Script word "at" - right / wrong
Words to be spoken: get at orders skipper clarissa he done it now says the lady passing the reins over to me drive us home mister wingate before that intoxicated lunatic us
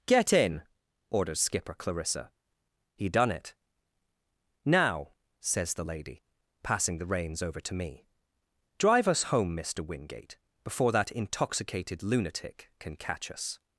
wrong